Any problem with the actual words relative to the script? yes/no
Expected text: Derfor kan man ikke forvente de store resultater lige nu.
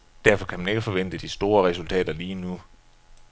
no